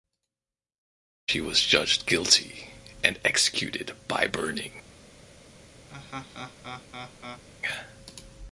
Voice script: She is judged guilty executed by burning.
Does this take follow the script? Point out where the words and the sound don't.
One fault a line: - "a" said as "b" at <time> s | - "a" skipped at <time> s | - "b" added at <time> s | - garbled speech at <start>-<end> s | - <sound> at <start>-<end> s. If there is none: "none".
- "is" said as "was" at 1.4 s
- "and" added at 3.0 s
- laugh at 5.9-7.4 s